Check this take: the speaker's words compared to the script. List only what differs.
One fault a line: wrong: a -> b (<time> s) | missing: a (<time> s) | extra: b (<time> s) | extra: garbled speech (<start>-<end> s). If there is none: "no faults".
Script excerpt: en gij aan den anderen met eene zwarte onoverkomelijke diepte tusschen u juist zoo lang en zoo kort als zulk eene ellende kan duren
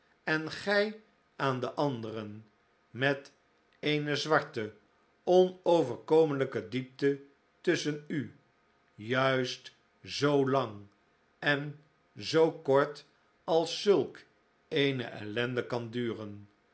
no faults